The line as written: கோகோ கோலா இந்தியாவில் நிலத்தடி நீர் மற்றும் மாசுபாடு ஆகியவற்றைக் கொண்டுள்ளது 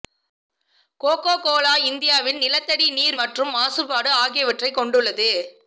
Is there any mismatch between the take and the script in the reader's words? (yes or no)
no